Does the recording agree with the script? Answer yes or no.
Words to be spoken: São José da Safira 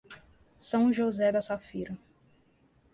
yes